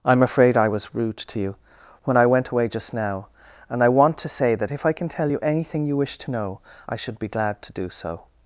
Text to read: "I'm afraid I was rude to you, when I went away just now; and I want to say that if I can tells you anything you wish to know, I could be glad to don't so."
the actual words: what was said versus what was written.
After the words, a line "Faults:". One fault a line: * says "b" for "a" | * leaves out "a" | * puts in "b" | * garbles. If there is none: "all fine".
"I'm afraid I was rude to you, when I went away just now; and I want to say that if I can tell you anything you wish to know, I should be glad to do so."
Faults:
* says "tell" for "tells"
* says "should" for "could"
* says "do" for "don't"